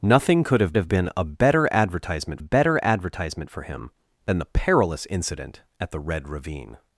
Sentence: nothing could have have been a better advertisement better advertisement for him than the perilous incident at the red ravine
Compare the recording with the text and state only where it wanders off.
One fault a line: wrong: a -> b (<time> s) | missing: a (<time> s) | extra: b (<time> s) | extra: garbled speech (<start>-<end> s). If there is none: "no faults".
no faults